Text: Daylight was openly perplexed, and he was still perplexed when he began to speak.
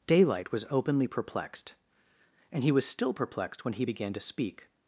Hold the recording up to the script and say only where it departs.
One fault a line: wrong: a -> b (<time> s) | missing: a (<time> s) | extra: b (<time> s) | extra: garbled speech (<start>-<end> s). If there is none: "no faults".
no faults